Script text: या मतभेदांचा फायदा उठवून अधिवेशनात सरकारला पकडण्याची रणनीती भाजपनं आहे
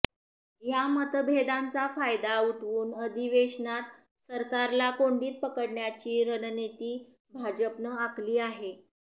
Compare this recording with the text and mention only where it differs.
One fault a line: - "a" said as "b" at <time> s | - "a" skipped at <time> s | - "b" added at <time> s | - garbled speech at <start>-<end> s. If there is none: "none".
- "कोंडीत" added at 4.9 s
- "आखली" added at 8.0 s